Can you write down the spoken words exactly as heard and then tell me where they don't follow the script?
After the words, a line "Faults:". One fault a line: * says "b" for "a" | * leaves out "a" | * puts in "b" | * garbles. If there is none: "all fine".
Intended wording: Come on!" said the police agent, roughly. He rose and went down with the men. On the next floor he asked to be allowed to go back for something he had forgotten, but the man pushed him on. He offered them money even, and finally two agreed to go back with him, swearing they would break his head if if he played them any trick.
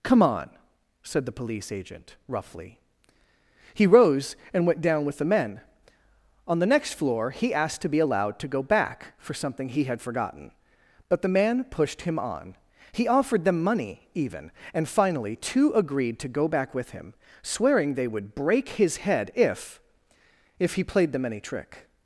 Come on!" said the police agent, roughly. He rose and went down with the men. On the next floor he asked to be allowed to go back for something he had forgotten, but the man pushed him on. He offered them money even, and finally two agreed to go back with him, swearing they would break his head if if he played them any trick.
Faults:
all fine